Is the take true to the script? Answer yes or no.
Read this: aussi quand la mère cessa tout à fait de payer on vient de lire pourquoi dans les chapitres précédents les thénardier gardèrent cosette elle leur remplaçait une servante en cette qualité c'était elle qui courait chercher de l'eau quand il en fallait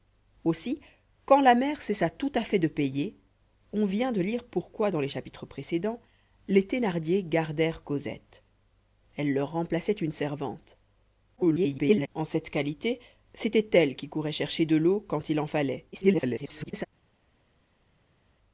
no